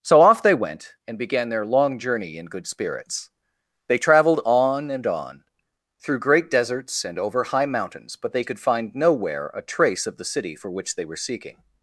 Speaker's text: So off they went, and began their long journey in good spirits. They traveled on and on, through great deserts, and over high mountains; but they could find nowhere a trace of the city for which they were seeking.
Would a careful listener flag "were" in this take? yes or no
no